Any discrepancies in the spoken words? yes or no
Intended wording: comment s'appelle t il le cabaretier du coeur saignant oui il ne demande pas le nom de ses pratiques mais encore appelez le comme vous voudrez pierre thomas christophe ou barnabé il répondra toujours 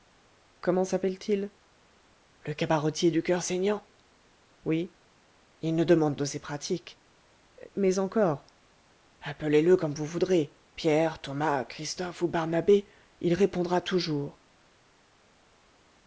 yes